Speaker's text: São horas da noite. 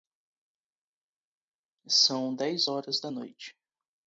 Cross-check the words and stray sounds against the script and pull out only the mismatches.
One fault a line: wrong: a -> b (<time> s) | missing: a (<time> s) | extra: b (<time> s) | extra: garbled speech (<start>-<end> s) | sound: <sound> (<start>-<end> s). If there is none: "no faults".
extra: dez (2.3 s)